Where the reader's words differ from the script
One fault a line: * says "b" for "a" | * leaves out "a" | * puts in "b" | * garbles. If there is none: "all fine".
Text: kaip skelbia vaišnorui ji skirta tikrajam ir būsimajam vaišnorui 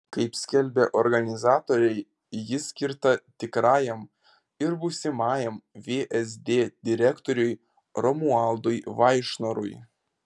* says "organizatoriai" for "vaišnorui"
* puts in "vsd direktoriui romualdui"